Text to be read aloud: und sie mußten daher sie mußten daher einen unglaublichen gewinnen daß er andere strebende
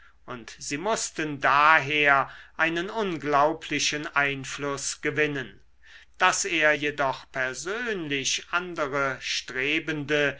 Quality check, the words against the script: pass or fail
fail